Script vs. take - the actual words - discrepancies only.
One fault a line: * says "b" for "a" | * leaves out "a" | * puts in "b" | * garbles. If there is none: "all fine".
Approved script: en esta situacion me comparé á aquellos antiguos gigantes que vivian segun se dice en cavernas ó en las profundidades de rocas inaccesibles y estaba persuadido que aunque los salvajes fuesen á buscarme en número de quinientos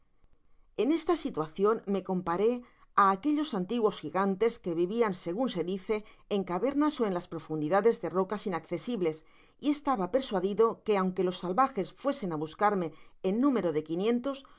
all fine